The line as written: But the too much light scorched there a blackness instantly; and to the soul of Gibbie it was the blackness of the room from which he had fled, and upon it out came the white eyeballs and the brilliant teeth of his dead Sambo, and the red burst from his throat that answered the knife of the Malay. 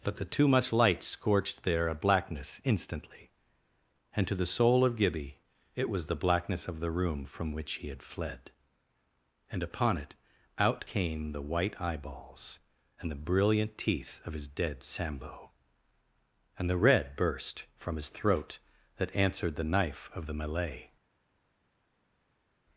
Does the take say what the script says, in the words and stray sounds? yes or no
yes